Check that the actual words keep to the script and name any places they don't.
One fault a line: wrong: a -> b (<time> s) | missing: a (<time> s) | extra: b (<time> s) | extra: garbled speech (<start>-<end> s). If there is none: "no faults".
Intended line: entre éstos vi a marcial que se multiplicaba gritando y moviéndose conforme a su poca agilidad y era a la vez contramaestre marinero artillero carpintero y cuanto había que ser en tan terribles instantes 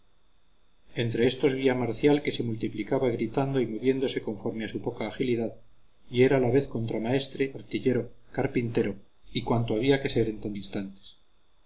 missing: marinero (7.4 s)
missing: terribles (10.6 s)